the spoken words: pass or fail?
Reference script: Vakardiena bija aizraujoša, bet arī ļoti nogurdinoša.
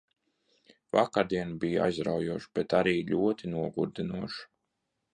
pass